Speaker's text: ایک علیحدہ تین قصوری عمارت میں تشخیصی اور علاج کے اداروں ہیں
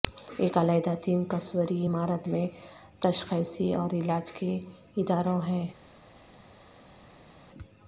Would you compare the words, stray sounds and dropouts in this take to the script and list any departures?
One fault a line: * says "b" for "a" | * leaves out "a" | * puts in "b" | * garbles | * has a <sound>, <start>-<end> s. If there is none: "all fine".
all fine